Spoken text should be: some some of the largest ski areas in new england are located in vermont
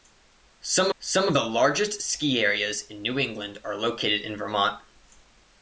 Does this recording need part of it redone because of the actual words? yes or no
no